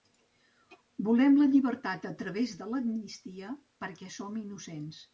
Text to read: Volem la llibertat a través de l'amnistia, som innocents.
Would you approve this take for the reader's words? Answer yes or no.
no